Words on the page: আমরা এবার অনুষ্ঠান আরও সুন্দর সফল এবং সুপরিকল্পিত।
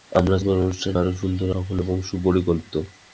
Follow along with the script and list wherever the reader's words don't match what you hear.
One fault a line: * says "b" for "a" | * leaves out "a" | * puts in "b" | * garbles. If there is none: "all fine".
all fine